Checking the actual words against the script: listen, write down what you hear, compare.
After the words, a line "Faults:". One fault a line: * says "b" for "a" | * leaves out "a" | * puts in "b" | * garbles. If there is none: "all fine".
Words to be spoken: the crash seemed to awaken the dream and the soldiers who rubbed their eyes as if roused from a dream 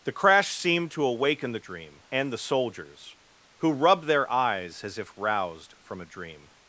the crash seemed to awaken the dream and the soldiers who rubbed their eyes as if roused from a dream
Faults:
all fine